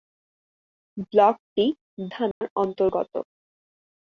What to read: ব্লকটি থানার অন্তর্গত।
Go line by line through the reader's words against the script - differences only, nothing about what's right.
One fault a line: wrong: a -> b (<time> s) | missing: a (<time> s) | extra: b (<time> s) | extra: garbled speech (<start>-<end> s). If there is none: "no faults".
no faults